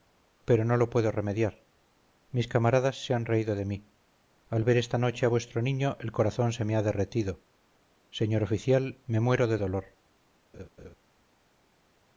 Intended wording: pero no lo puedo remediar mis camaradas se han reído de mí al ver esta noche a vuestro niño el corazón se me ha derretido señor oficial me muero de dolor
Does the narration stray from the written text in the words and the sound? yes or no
yes